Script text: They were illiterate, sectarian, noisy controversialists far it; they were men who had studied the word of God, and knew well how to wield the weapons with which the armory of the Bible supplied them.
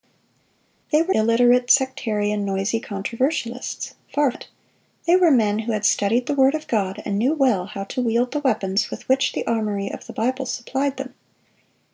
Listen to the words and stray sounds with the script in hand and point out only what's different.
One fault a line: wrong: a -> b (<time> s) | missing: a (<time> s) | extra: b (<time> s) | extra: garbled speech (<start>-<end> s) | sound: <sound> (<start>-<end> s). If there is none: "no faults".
no faults